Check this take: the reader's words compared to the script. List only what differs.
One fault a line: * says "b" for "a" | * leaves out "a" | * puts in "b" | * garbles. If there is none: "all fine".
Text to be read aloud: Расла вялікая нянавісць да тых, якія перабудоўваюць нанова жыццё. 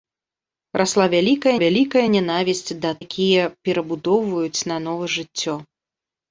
* puts in "вялікая"
* leaves out "тых"